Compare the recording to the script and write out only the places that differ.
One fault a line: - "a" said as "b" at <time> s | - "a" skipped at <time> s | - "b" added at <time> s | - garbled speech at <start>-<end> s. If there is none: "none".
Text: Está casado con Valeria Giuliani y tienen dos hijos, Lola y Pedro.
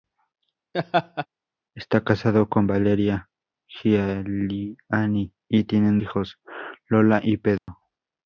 - "dos" skipped at 6.0 s